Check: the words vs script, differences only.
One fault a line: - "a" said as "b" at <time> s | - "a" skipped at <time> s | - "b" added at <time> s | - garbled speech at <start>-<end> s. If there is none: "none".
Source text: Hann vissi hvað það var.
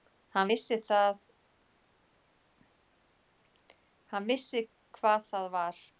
none